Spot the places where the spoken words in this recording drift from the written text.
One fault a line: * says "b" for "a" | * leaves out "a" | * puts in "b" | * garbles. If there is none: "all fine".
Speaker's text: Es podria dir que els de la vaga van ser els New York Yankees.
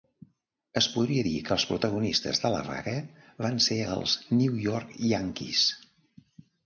* puts in "protagonistes"